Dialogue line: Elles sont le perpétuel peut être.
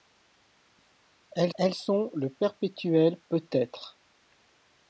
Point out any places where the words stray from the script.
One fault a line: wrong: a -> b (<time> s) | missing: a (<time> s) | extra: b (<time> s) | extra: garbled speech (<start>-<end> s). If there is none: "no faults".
extra: elles (1.6 s)